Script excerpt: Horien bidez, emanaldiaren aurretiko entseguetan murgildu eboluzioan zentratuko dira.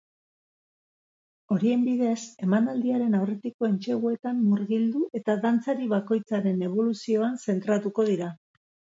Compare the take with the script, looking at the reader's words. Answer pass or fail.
fail